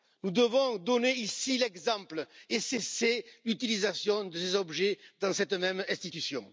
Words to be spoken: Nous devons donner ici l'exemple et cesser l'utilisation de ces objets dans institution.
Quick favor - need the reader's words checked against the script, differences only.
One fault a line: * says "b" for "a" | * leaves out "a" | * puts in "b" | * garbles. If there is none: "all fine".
* puts in "cette même"